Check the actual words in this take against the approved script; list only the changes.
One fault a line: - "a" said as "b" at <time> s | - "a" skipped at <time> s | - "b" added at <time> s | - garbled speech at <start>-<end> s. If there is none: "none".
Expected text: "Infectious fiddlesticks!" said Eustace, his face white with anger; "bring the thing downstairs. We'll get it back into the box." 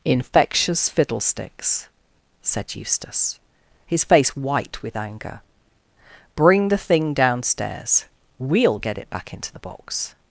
none